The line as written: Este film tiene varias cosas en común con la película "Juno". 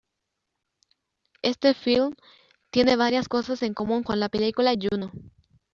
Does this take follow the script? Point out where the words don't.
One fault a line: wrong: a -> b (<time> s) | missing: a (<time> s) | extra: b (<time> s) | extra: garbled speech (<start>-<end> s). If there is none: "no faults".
no faults